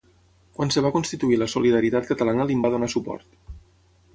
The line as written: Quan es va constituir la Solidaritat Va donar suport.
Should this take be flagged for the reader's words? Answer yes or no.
yes